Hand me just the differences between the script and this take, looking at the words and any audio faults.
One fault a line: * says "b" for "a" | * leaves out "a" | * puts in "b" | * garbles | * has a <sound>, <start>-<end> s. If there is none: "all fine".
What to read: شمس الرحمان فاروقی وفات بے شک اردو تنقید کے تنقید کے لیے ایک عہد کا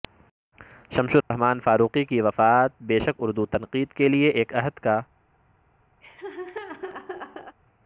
* has a dropout, 1.2-1.3 s
* puts in "کی"
* leaves out "تنقید کے"
* has a laugh, 6.0-7.6 s